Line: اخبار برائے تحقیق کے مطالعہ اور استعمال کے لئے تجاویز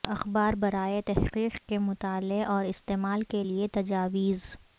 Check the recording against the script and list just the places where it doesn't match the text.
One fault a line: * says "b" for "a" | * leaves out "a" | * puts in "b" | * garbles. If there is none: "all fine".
all fine